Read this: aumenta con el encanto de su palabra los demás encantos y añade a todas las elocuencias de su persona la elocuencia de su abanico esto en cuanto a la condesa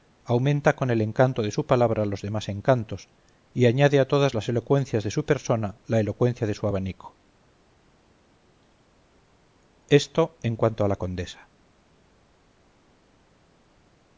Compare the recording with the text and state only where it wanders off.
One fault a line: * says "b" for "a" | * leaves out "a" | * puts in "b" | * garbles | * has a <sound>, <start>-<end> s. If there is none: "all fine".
all fine